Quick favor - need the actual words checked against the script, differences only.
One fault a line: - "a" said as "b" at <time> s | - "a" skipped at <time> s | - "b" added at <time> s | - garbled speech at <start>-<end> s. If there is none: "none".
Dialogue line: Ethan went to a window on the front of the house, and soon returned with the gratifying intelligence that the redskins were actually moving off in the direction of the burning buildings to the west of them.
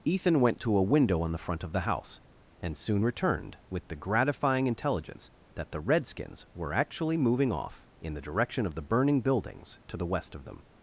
none